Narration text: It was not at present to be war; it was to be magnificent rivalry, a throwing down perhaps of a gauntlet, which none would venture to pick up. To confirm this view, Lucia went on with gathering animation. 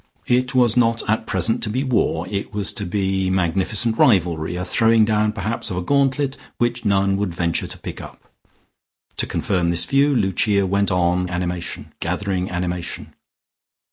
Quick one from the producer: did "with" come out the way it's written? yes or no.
no